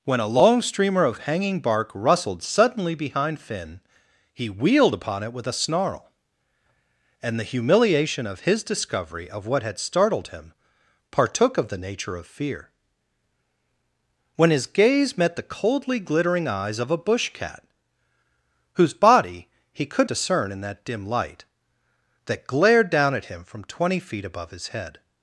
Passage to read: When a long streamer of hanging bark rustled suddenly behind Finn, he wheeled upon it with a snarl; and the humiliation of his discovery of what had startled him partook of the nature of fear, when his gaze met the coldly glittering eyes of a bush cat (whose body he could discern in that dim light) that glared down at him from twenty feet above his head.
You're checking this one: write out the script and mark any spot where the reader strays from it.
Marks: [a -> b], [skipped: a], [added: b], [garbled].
When a long streamer of hanging bark rustled suddenly behind Finn, he wheeled upon it with a snarl; and the humiliation of his discovery of what had startled him partook of the nature of fear, when his gaze met the coldly glittering eyes of a bush cat (whose body he could discern in that dim light) that glared down at him from twenty feet above his head.